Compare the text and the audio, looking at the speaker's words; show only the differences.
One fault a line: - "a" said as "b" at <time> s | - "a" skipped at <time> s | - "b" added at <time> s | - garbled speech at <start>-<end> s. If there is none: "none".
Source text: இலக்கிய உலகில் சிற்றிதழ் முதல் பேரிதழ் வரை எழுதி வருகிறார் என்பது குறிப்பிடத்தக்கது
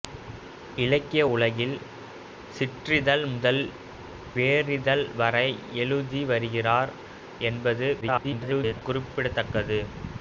- garbled speech at 8.0-8.8 s